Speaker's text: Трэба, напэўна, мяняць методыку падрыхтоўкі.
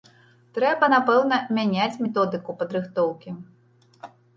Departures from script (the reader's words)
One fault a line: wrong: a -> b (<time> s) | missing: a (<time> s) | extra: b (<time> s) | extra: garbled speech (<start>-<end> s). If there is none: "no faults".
no faults